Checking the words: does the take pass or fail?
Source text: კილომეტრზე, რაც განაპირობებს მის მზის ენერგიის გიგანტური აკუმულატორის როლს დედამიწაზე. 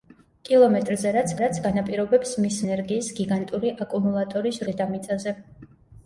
fail